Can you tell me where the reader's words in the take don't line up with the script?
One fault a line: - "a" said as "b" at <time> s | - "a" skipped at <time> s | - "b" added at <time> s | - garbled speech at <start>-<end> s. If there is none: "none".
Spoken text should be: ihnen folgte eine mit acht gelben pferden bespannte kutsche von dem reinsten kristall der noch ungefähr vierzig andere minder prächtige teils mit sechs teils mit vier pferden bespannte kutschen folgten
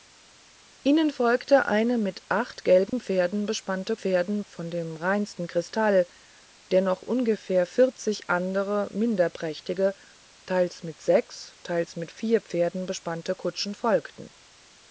- "kutsche" said as "pferden" at 4.0 s